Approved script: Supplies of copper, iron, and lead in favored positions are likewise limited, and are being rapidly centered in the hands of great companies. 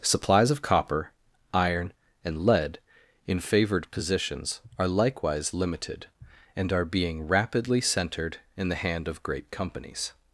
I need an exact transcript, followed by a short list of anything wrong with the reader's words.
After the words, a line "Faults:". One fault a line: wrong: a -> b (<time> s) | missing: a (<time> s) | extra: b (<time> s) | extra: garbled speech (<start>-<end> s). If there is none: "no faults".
Supplies of copper, iron, and lead in favored positions are likewise limited, and are being rapidly centered in the hand of great companies.
Faults:
wrong: hands -> hand (8.7 s)